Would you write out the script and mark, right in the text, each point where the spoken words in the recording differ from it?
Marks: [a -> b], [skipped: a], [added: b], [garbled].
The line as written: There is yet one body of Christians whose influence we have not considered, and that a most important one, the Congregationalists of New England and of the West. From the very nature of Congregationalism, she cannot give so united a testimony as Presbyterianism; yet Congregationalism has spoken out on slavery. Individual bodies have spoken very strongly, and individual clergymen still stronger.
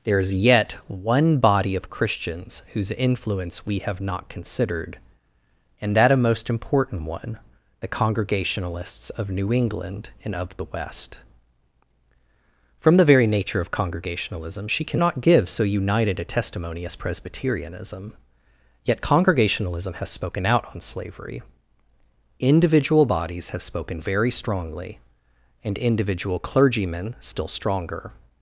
There is yet one body of Christians whose influence we have not considered, and that a most important one, the Congregationalists of New England and of the West. From the very nature of Congregationalism, she cannot give so united a testimony as Presbyterianism; yet Congregationalism has spoken out on slavery. Individual bodies have spoken very strongly, and individual clergymen still stronger.